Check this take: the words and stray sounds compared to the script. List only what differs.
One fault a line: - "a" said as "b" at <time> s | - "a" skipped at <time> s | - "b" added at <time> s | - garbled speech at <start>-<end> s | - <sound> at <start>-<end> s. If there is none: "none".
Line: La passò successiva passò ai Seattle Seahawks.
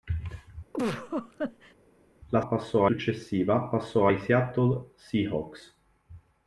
- laugh at 0.7-1.7 s